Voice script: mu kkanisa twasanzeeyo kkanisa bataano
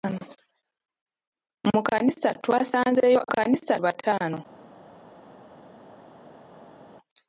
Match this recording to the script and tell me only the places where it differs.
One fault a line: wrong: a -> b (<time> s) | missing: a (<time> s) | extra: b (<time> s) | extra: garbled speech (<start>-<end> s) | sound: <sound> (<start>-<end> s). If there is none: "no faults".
no faults